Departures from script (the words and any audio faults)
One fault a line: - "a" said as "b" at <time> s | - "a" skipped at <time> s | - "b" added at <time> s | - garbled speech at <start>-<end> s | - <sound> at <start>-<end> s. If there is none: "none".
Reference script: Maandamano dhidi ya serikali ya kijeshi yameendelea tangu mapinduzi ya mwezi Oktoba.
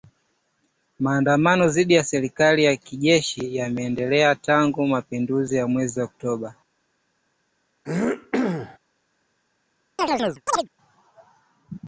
- throat clearing at 7.9-8.8 s
- chirp at 10.0-10.7 s